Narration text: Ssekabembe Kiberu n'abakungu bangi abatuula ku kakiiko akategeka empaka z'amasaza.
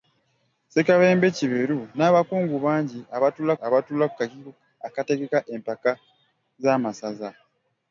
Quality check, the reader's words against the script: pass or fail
fail